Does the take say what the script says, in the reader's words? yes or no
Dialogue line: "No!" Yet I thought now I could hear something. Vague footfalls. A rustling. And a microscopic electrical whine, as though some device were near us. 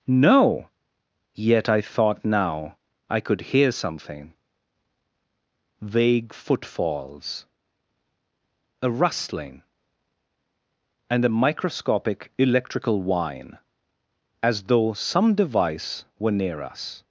yes